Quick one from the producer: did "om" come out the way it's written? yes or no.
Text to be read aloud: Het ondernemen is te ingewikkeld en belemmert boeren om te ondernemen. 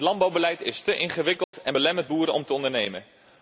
yes